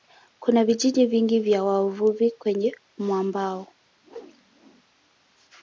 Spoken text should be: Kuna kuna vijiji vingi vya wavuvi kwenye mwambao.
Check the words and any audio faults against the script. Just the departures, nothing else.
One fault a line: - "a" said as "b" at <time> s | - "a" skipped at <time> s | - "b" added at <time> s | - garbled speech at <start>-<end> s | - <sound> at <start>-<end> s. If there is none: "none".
- "kuna" skipped at 0.7 s
- whoosh at 4.0-4.8 s